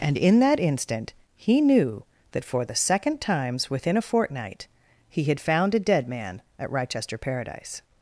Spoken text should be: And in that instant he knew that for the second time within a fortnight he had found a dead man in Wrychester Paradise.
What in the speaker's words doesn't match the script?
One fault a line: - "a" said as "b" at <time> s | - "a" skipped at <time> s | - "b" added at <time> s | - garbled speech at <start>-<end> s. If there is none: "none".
- "time" said as "times" at 3.2 s
- "in" said as "at" at 6.6 s